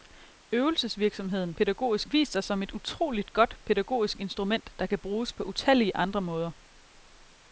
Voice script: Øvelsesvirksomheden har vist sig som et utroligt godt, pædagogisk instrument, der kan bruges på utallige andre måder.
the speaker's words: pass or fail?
fail